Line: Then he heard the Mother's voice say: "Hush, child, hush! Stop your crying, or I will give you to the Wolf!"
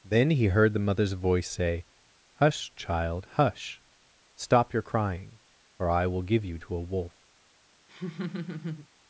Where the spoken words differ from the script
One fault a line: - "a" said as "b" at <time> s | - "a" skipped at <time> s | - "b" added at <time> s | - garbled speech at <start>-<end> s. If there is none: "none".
- "the" said as "a" at 6.7 s